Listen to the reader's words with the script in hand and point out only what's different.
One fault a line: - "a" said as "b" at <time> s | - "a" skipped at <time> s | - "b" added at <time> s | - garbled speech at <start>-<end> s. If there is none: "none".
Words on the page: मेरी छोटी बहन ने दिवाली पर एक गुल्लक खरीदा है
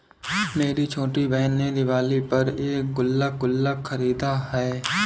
- "गुल्लक" added at 3.4 s